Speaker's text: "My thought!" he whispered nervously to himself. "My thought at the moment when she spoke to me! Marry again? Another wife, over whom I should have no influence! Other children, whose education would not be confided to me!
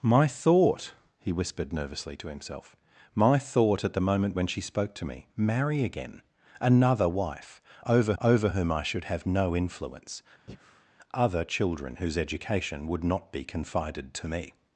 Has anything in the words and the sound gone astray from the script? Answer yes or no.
yes